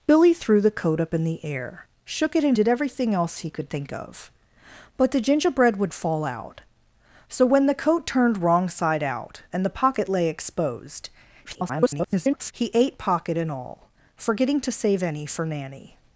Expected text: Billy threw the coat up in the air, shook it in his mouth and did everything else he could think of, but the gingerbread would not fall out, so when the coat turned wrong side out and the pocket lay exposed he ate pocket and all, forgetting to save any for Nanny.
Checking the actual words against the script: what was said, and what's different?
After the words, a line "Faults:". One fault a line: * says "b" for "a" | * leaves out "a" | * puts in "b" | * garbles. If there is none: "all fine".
Billy threw the coat up in the air, shook it in did everything else he could think of, but the gingerbread would fall out, so when the coat turned wrong side out and the pocket lay exposed [garbled] he ate pocket and all, forgetting to save any for Nanny.
Faults:
* leaves out "his mouth and"
* leaves out "not"
* garbles